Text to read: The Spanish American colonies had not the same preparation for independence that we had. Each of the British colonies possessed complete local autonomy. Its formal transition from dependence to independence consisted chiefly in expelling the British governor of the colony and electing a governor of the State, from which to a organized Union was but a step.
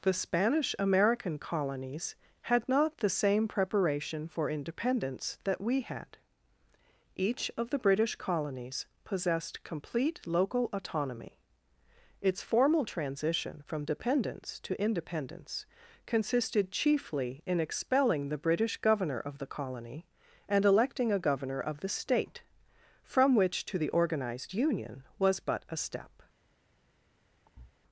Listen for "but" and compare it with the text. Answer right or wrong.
right